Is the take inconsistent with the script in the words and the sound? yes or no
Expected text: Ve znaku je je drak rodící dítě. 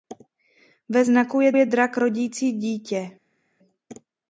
no